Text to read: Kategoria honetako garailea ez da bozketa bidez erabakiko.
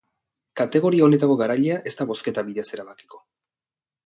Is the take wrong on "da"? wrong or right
right